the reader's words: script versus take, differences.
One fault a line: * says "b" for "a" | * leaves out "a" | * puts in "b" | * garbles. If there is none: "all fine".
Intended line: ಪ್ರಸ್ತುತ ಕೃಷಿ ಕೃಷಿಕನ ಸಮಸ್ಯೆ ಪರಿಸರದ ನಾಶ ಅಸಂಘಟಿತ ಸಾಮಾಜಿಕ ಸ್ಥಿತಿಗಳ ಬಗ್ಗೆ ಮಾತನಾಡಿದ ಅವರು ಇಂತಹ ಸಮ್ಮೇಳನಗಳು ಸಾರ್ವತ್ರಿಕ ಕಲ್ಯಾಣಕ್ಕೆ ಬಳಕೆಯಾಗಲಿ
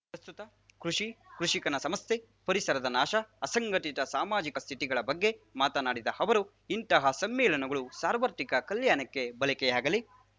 all fine